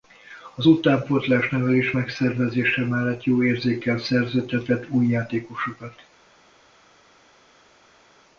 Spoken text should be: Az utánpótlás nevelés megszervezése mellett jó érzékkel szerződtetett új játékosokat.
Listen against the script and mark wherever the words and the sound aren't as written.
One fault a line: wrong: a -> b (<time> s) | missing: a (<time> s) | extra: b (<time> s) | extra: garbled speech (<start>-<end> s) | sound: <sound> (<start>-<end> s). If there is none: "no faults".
no faults